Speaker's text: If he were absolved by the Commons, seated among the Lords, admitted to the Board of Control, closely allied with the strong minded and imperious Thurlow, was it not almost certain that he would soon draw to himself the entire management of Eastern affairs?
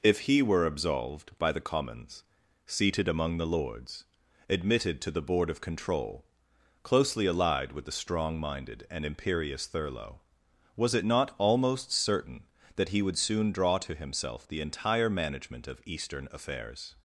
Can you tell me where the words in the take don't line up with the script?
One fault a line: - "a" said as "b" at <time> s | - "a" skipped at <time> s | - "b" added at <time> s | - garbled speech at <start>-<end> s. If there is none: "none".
none